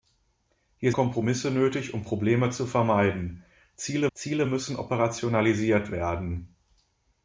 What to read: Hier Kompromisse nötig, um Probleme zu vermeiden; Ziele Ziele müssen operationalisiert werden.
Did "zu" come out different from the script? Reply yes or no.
no